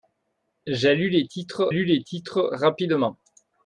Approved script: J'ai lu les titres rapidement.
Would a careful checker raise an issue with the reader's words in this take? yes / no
yes